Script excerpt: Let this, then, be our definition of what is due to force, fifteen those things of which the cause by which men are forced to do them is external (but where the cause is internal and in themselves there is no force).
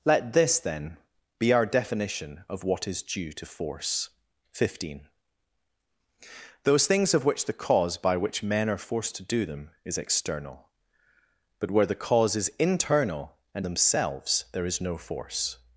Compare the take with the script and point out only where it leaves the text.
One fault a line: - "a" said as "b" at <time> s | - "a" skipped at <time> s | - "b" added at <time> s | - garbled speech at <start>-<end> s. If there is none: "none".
- "in" skipped at 13.7 s